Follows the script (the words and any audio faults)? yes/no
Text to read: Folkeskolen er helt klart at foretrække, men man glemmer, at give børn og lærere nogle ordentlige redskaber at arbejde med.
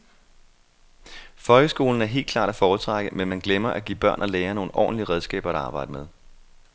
yes